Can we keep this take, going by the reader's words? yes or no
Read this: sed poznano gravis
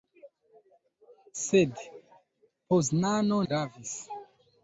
yes